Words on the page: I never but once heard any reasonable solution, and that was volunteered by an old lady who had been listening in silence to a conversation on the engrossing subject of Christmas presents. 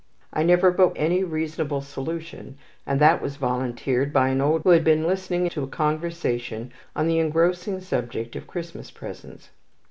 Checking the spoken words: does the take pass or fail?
fail